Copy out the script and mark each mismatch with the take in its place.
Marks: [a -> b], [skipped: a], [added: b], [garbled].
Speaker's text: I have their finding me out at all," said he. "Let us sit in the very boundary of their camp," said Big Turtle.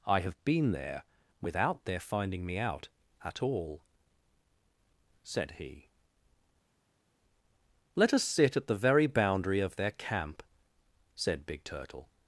I have [added: been there without] their finding me out at all," said he. "Let us sit [in -> at] the very boundary of their camp," said Big Turtle.